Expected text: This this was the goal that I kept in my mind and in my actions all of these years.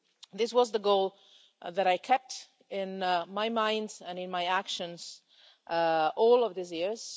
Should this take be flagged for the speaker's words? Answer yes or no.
yes